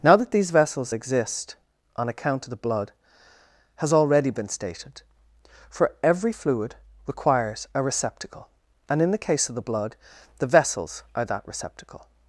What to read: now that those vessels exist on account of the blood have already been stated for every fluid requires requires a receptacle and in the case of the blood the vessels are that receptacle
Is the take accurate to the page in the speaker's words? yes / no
no